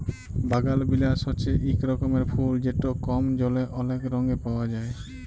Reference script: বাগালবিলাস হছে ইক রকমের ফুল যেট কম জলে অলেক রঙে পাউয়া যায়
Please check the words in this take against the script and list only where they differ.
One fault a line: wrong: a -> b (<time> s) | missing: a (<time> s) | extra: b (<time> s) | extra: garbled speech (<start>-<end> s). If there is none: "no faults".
no faults